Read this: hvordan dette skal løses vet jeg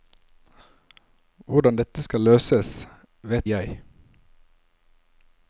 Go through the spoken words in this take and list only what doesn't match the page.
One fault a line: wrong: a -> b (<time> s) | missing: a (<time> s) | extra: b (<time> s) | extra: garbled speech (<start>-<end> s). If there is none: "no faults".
no faults